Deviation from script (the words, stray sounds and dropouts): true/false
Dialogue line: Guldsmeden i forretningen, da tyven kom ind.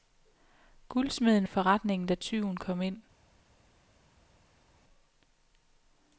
false